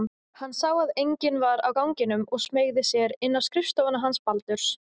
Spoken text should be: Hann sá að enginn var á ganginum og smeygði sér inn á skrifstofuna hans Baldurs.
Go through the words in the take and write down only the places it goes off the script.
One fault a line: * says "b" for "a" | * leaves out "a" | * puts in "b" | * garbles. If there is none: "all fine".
all fine